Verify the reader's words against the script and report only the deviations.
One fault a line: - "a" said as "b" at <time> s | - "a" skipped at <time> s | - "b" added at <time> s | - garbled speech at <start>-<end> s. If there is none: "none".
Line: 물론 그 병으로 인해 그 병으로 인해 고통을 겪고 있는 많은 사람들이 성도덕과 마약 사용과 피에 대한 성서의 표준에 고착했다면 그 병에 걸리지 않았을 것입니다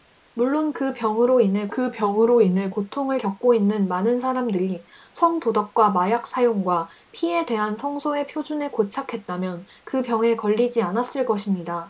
none